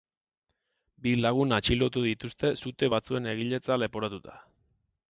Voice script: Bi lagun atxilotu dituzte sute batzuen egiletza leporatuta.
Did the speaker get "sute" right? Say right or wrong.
right